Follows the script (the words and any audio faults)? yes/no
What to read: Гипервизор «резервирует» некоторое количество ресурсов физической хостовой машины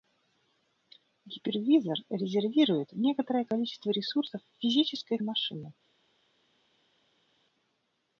no